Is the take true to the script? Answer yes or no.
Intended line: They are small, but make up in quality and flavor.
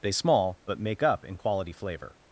no